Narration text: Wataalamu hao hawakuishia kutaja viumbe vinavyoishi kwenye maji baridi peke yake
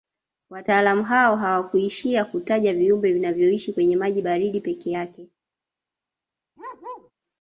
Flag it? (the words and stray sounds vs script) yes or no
yes